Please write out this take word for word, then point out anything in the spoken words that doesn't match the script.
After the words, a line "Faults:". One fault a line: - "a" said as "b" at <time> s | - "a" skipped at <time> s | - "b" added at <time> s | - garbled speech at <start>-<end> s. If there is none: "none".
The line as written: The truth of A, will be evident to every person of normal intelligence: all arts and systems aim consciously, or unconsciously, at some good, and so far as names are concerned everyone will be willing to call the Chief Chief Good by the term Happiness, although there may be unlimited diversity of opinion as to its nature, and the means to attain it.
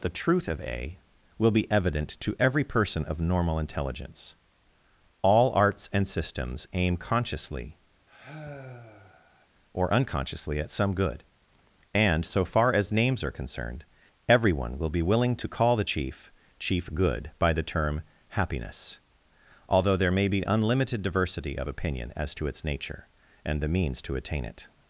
The truth of A, will be evident to every person of normal intelligence: all arts and systems aim consciously, or unconsciously, at some good, and so far as names are concerned everyone will be willing to call the Chief Chief Good by the term Happiness, although there may be unlimited diversity of opinion as to its nature, and the means to attain it.
Faults:
none